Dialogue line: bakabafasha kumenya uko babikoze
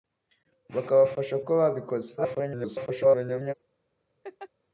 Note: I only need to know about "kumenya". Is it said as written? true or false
false